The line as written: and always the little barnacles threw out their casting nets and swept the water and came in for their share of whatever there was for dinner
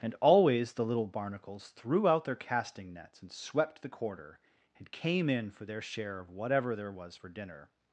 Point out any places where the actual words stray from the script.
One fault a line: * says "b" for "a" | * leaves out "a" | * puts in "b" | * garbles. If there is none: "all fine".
* says "quarter" for "water"